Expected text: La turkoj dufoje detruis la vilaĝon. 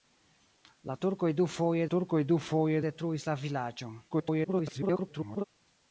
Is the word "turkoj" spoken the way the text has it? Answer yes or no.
yes